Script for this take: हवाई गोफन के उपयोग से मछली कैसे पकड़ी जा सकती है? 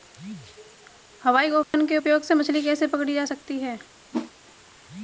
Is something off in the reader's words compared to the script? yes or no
no